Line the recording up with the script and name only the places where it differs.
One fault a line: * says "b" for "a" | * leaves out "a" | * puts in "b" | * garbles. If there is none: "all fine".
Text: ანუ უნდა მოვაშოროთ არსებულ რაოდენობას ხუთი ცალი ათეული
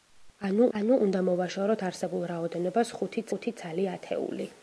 * puts in "ანუ"
* puts in "ხუთი"